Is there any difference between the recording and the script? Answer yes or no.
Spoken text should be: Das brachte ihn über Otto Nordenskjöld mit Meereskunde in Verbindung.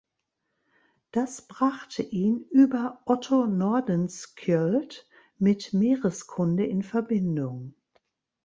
no